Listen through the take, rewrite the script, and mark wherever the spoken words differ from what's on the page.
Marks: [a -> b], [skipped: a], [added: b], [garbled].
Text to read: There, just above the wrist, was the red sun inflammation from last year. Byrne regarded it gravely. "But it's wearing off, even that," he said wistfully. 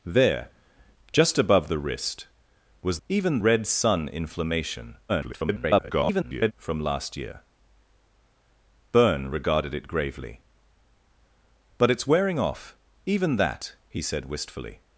There, just above the wrist, was [the -> even] red sun inflammation [garbled] from last year. Byrne regarded it gravely. "But it's wearing off, even that," he said wistfully.